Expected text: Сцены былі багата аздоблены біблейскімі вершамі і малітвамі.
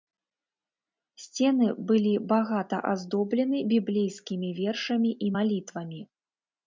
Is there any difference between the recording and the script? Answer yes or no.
no